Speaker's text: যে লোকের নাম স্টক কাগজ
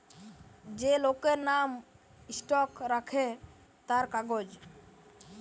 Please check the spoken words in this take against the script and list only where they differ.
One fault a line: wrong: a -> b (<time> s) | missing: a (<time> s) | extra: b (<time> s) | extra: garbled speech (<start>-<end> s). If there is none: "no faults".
extra: রাখে তার (2.9 s)